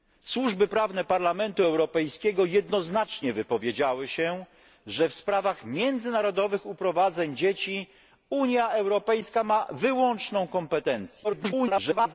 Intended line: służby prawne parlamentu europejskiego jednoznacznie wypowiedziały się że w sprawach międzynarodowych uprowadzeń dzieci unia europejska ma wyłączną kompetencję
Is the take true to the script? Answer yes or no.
no